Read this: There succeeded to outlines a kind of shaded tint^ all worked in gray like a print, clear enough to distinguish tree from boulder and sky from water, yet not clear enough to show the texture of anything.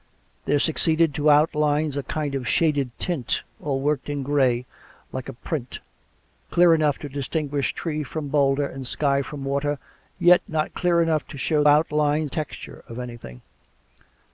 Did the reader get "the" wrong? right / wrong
wrong